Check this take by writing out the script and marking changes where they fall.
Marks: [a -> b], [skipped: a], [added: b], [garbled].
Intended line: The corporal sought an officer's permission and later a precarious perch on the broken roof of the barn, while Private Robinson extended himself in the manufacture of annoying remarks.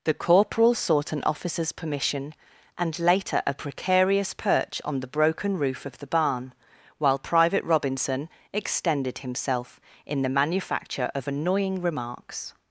The corporal sought an officer's permission and later a precarious perch on the broken roof of the barn, while Private Robinson extended himself in the manufacture of annoying remarks.